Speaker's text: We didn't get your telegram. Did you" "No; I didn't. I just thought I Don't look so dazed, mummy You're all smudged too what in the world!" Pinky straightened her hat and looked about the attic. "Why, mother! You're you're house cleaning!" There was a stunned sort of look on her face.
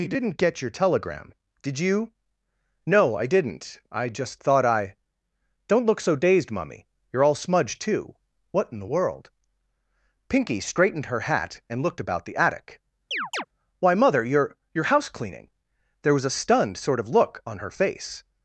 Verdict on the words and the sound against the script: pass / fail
fail